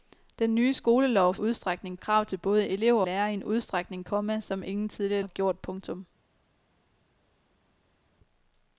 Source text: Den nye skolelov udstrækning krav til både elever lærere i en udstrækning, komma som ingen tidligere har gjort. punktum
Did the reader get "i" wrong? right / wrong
right